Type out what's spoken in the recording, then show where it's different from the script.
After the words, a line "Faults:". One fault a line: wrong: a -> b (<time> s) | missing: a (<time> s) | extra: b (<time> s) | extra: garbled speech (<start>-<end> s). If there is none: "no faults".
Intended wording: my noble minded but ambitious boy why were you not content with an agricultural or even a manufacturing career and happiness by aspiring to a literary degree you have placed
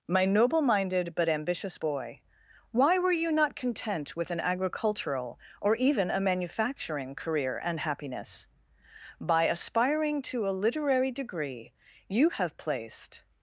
my noble minded but ambitious boy why were you not content with an agricultural or even a manufacturing career and happiness by aspiring to a literary degree you have placed
Faults:
no faults